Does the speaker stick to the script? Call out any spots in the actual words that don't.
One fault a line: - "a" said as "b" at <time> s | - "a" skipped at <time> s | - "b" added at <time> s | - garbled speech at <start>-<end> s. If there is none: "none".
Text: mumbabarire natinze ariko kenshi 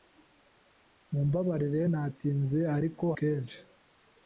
none